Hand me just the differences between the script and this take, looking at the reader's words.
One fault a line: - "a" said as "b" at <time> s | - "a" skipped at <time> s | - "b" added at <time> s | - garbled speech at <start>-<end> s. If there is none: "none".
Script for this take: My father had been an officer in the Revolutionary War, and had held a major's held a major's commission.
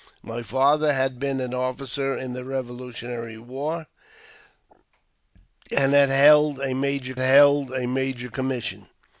none